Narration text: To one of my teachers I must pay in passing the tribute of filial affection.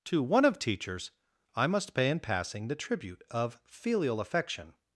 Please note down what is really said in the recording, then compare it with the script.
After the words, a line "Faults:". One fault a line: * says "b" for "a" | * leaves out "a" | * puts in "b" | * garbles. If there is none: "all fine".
To one of teachers I must pay in passing the tribute of filial affection.
Faults:
* leaves out "my"